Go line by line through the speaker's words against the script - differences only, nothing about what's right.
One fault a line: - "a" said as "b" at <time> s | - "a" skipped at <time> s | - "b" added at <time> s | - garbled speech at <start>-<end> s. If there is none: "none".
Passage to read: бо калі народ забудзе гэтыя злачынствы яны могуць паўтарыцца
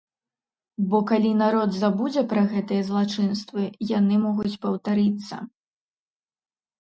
- "пра" added at 2.3 s